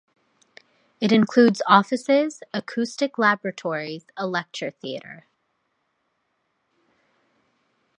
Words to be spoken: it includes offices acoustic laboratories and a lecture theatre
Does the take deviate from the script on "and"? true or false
true